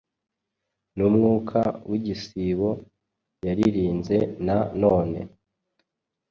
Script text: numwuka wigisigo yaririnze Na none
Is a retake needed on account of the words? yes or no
no